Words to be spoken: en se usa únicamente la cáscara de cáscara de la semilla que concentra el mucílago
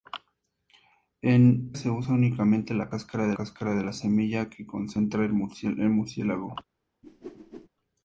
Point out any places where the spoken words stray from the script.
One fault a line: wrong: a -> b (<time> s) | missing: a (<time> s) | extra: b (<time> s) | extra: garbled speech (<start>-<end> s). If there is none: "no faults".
no faults